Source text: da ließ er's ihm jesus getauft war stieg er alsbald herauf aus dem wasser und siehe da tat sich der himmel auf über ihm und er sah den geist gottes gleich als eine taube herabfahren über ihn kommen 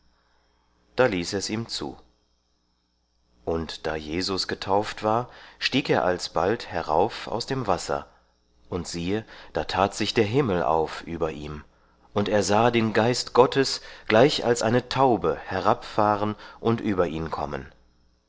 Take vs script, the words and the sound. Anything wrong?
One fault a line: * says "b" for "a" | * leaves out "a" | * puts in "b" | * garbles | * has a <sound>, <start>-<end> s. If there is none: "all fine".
* puts in "zu und da"
* puts in "und"